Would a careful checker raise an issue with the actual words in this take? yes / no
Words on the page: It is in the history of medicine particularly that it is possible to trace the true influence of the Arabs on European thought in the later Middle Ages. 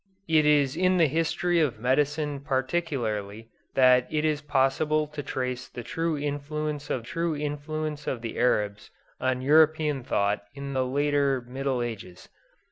yes